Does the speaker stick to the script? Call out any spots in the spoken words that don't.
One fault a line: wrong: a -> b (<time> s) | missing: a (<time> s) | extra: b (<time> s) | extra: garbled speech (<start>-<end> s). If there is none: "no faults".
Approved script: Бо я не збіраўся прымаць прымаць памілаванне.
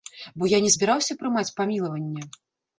missing: прымаць (1.4 s)